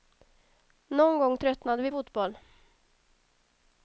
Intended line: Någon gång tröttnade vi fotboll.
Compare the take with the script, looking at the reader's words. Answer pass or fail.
pass